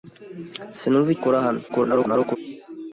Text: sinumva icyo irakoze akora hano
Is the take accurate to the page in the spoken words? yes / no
no